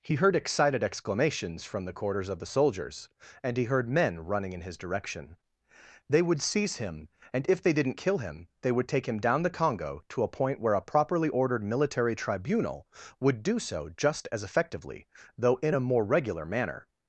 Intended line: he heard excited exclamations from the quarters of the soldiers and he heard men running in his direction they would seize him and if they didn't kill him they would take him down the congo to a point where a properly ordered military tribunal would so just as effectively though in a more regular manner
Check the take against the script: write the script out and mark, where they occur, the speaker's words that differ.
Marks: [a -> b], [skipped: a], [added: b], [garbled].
he heard excited exclamations from the quarters of the soldiers and he heard men running in his direction they would seize him and if they didn't kill him they would take him down the congo to a point where a properly ordered military tribunal would [added: do] so just as effectively though in a more regular manner